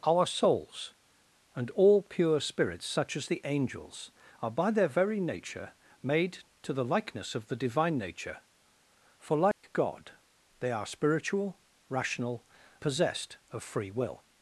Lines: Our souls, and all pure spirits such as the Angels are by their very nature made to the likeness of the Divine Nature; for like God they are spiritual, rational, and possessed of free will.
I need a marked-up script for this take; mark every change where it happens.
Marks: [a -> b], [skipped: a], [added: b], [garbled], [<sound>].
Our souls, and all pure spirits such as the Angels are by their very nature made to the likeness of the Divine Nature; for like [dropout] God they are spiritual, rational, [skipped: and] possessed of free will.